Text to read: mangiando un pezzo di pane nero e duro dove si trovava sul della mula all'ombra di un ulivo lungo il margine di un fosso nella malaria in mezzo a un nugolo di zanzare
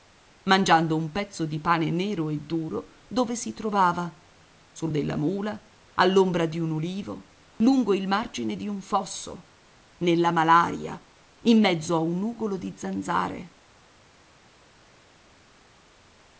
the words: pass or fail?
pass